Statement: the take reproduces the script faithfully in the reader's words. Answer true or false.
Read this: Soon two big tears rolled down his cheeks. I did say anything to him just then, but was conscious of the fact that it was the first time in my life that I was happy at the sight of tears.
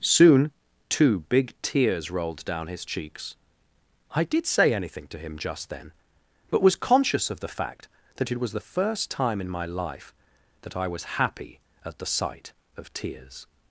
true